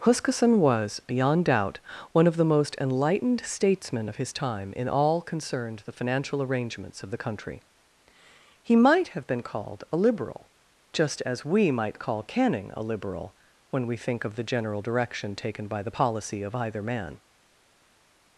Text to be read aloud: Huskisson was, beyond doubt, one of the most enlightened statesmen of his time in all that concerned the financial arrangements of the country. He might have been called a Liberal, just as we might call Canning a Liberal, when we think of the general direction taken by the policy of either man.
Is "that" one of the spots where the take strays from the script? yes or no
yes